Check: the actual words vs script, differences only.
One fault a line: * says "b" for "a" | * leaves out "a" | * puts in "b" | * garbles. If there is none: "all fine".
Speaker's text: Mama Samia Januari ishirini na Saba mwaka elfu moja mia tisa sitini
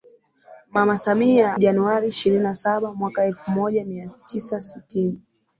all fine